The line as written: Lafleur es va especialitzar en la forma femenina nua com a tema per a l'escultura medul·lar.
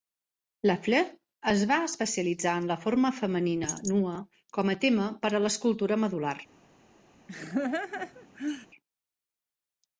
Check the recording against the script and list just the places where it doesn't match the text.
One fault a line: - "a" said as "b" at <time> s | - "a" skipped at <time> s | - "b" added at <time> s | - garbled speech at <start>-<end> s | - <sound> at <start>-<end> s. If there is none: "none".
- laugh at 7.3-8.7 s